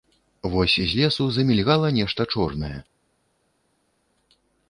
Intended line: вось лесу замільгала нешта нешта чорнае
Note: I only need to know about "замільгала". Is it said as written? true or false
true